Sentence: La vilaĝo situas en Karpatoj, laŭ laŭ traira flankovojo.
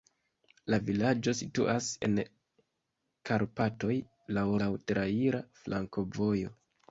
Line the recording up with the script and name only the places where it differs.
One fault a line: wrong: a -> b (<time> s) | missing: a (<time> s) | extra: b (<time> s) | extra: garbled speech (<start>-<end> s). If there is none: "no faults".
no faults